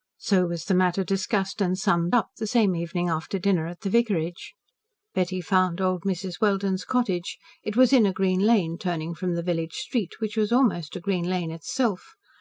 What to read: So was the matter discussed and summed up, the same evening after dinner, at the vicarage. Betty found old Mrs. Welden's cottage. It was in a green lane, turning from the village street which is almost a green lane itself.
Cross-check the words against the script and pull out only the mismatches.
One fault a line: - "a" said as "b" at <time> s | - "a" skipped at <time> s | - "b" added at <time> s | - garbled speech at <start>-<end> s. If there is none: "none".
- "is" said as "was" at 10.3 s